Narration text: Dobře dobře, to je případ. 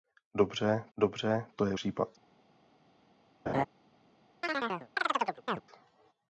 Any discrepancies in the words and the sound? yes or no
yes